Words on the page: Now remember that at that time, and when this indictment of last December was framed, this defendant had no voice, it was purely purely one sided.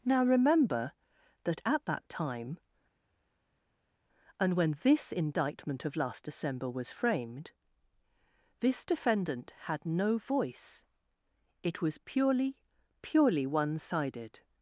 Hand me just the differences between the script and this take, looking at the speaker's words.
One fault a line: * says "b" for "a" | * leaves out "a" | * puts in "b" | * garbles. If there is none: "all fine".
all fine